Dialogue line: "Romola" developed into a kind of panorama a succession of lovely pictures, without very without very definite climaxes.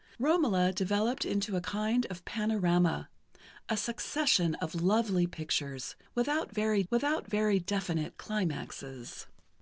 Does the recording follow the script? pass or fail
pass